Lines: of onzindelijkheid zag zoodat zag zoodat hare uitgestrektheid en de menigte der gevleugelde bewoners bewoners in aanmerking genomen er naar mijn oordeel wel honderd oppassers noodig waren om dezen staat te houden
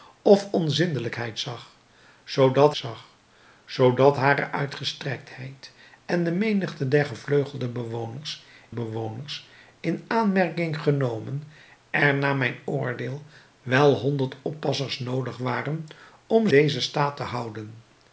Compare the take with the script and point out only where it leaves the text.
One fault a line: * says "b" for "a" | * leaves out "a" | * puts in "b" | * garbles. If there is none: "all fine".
all fine